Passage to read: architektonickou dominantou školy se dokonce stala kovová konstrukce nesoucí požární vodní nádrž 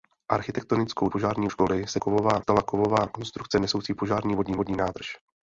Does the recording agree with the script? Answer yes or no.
no